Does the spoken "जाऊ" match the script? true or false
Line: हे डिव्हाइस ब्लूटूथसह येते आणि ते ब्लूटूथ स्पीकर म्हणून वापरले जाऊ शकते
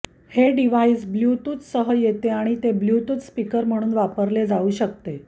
true